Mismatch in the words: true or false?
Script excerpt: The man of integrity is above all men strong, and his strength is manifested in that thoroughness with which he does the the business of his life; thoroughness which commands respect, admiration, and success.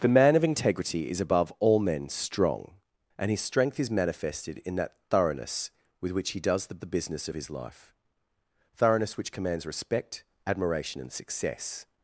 false